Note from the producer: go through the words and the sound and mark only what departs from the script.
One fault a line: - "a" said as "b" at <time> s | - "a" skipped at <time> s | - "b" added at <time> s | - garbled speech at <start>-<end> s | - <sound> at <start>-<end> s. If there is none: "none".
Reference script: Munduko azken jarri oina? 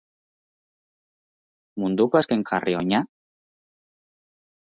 none